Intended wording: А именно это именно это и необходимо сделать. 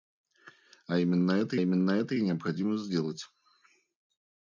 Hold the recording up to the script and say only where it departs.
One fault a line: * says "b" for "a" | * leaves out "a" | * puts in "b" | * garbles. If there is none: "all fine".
all fine